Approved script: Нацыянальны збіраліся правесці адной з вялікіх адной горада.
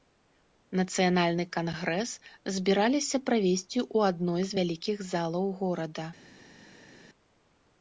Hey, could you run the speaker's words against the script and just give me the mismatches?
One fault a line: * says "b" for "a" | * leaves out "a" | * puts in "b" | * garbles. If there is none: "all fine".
* puts in "кангрэс"
* puts in "ў"
* says "залаў" for "адной"